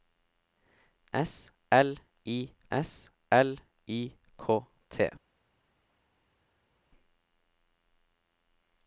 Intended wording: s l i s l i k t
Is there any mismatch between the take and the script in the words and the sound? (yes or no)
no